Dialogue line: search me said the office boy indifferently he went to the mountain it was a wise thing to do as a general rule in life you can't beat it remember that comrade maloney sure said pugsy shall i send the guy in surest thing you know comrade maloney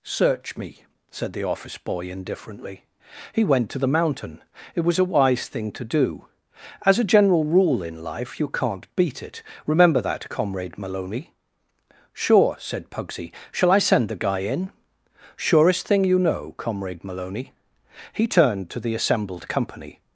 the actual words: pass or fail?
fail